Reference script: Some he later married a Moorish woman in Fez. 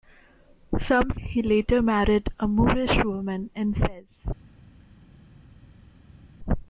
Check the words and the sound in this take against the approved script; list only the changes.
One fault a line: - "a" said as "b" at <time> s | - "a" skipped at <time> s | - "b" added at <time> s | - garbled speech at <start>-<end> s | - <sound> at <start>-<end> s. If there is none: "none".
none